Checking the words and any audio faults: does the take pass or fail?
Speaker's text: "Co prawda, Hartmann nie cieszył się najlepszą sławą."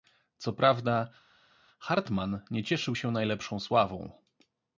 pass